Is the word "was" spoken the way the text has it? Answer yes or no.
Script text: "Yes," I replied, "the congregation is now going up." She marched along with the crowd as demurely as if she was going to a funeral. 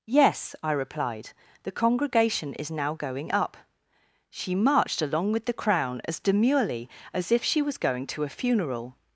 yes